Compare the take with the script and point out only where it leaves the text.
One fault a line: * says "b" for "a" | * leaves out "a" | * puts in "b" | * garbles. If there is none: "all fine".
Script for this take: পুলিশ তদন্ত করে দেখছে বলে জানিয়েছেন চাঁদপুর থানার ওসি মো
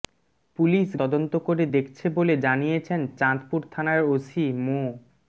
all fine